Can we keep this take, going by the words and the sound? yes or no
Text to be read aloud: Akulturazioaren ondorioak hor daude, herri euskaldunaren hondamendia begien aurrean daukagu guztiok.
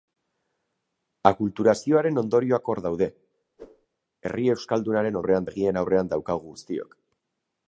no